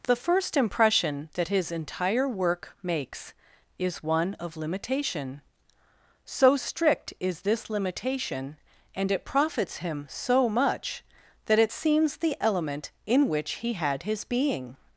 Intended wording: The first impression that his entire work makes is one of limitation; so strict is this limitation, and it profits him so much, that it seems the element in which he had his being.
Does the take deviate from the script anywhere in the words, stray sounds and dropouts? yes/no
no